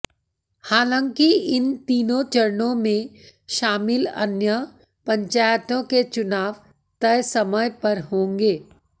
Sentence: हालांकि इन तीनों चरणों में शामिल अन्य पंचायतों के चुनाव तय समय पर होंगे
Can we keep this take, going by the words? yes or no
yes